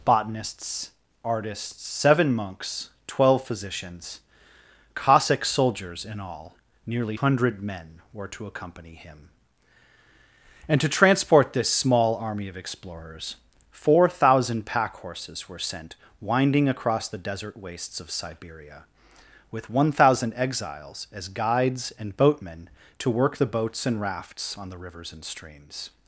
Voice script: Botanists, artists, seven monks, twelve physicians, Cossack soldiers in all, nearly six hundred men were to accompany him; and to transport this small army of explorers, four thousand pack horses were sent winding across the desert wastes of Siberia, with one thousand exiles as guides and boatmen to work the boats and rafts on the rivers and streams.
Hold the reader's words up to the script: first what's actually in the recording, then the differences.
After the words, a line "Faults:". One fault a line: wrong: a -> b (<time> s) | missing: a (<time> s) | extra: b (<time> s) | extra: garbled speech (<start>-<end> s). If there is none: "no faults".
Botanists, artists, seven monks, twelve physicians, Cossack soldiers in all, nearly hundred men were to accompany him; and to transport this small army of explorers, four thousand pack horses were sent winding across the desert wastes of Siberia, with one thousand exiles as guides and boatmen to work the boats and rafts on the rivers and streams.
Faults:
missing: six (7.2 s)